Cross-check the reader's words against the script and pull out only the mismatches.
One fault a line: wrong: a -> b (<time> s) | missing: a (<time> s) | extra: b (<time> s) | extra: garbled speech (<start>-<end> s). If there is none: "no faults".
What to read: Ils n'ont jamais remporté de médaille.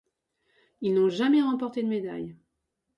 no faults